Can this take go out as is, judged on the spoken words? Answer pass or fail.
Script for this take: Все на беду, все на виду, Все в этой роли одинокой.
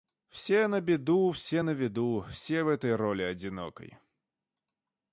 pass